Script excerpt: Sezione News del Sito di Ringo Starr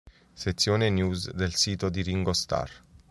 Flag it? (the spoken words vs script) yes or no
no